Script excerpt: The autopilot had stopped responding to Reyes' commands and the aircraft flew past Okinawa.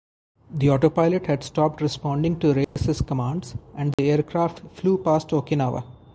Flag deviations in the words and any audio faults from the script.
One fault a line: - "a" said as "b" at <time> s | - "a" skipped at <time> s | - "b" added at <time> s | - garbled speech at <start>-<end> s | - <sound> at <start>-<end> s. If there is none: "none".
- dropout at 2.6-2.8 s
- dropout at 3.9-4.0 s